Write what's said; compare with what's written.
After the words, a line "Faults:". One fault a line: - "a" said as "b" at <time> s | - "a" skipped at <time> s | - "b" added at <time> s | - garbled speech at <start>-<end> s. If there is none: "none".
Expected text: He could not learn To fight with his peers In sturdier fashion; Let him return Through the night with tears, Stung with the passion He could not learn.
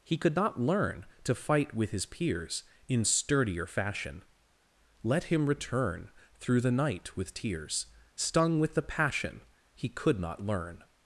He could not learn To fight with his peers In sturdier fashion; Let him return Through the night with tears, Stung with the passion He could not learn.
Faults:
none